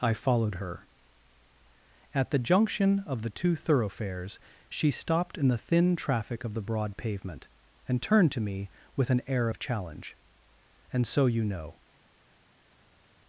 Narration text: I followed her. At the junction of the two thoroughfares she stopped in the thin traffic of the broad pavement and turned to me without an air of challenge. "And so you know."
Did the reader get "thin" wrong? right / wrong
right